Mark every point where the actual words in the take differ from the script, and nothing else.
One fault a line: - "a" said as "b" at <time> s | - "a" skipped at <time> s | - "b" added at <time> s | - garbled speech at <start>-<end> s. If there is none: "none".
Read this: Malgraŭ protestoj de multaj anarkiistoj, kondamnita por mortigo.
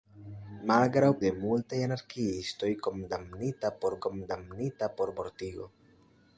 - "protestoj" skipped at 1.1 s
- "kondamnita por" added at 4.1 s